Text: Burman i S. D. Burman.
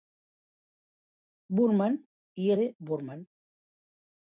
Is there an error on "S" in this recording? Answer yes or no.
yes